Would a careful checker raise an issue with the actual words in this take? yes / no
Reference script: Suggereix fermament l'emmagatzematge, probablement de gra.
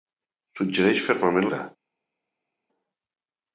yes